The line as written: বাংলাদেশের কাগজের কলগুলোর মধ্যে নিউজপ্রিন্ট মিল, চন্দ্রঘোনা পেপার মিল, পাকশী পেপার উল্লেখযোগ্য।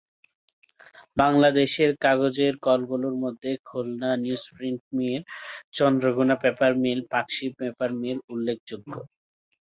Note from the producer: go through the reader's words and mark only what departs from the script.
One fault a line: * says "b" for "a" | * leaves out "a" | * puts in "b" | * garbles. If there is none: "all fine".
* puts in "খুলনা"
* puts in "মিল"